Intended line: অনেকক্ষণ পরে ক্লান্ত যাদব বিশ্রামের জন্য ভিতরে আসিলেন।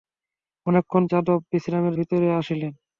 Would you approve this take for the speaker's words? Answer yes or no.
no